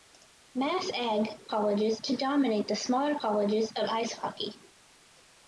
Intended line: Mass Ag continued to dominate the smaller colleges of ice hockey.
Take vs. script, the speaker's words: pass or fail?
fail